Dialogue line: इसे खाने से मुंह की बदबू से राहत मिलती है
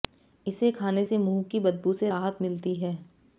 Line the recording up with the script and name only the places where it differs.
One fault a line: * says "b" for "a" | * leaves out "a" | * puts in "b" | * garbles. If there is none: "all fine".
all fine